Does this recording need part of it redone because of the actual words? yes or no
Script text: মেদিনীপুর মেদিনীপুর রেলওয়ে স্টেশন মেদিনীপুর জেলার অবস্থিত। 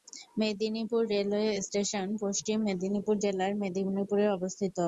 yes